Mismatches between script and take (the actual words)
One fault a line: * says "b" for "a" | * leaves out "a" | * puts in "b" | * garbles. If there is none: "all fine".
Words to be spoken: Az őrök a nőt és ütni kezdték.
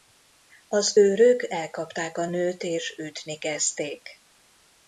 * puts in "elkapták"